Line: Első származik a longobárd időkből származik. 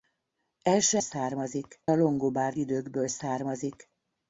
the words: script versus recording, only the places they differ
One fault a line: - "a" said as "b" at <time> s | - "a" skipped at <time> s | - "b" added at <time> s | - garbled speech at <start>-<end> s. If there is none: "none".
none